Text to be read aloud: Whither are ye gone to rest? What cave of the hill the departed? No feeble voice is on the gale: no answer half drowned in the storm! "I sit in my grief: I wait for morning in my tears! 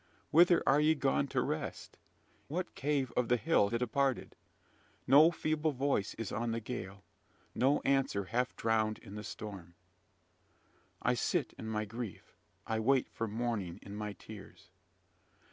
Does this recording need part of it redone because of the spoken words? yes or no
no